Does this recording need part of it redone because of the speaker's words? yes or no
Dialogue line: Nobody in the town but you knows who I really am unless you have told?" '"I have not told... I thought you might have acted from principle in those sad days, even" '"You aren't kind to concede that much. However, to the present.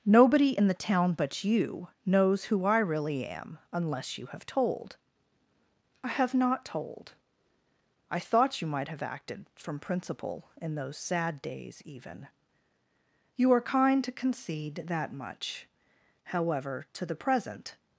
yes